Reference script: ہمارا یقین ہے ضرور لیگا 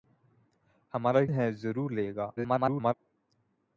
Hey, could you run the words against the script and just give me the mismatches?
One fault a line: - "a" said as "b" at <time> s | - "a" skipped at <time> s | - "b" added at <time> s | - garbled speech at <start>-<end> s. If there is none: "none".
- "یقین" skipped at 1.2 s
- garbled speech at 2.4-2.9 s